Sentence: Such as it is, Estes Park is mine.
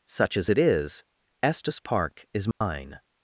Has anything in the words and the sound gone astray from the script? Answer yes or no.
yes